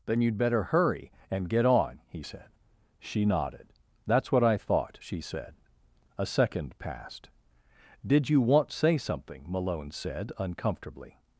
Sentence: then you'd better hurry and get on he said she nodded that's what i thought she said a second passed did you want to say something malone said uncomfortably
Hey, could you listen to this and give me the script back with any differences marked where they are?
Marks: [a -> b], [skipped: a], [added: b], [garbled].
then you'd better hurry and get on he said she nodded that's what i thought she said a second passed did you want [skipped: to] say something malone said uncomfortably